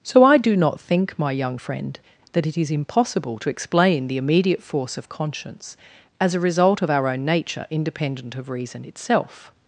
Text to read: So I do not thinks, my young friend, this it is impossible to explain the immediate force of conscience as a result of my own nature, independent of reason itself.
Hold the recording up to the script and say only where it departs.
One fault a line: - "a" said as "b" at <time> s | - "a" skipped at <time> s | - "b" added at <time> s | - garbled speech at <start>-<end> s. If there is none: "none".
- "thinks" said as "think" at 0.8 s
- "this" said as "that" at 2.3 s
- "my" said as "our" at 6.9 s